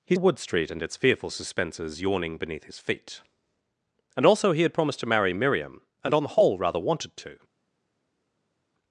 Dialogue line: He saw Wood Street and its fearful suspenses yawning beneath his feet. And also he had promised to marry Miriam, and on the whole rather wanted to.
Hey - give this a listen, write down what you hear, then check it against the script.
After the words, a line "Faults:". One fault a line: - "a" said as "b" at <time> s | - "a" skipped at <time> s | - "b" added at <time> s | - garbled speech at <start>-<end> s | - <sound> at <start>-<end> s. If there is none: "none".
He Wood Street and its fearful suspenses yawning beneath his feet. And also he had promised to marry Miriam, and on the whole rather wanted to.
Faults:
- "saw" skipped at 0.1 s